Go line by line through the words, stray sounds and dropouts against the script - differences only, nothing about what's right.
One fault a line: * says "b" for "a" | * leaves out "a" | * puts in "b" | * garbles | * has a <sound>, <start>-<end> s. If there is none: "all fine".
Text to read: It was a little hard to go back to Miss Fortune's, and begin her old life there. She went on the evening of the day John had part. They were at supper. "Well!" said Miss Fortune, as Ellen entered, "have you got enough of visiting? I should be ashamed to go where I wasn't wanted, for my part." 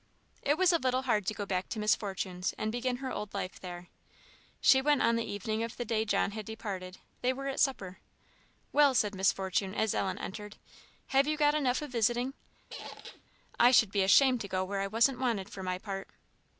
* says "departed" for "part"
* has a squeak, 12.7-13.2 s